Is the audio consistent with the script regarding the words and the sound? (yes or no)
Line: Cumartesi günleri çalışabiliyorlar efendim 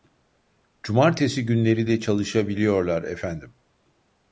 no